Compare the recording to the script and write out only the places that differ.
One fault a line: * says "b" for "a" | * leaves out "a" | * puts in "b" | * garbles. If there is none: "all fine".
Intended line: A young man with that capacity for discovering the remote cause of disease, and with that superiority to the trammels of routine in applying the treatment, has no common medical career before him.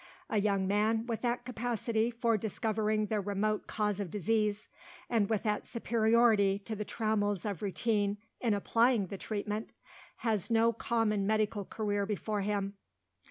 all fine